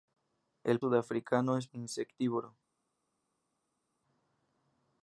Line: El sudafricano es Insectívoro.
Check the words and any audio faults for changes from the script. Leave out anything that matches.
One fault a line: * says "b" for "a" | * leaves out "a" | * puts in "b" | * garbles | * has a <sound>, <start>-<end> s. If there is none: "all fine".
all fine